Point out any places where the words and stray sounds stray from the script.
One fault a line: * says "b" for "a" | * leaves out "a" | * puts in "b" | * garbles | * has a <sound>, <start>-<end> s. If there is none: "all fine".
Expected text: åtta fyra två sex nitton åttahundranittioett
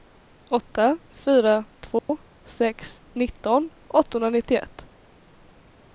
* has a dropout, 2.0-2.1 s